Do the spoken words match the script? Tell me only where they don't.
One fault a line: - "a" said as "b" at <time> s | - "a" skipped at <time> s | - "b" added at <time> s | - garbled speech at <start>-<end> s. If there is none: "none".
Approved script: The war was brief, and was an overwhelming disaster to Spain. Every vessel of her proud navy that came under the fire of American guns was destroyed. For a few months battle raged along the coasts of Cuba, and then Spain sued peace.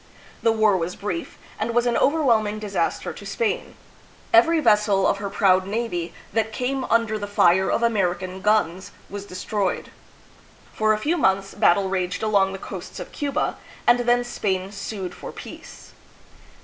- "for" added at 15.2 s